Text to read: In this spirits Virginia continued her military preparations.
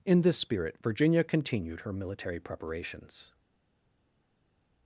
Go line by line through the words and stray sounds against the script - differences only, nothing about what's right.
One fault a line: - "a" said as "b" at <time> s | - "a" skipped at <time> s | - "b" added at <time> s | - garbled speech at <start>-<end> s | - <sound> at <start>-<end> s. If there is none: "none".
- "spirits" said as "spirit" at 0.4 s